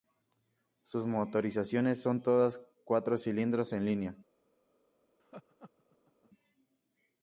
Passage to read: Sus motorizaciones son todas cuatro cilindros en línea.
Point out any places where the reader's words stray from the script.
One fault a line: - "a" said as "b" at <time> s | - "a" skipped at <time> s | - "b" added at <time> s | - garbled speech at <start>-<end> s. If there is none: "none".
none